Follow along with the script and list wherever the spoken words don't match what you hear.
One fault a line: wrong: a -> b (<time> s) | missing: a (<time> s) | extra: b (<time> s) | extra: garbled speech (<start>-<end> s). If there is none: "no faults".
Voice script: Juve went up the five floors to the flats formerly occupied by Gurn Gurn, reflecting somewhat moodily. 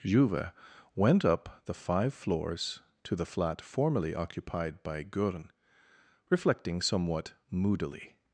wrong: flats -> flat (3.2 s)
missing: Gurn (5.5 s)